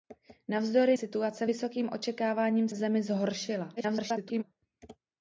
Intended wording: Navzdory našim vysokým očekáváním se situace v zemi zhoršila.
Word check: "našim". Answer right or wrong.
wrong